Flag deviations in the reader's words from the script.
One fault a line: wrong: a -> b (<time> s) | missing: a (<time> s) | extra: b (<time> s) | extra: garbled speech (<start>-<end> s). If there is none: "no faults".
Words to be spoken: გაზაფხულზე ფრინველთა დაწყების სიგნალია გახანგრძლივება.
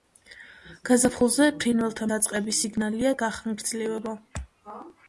no faults